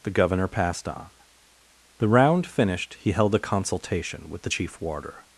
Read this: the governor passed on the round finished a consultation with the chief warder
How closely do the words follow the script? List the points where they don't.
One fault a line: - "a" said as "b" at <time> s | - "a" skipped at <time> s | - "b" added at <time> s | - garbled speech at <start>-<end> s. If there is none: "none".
- "he held" added at 3.0 s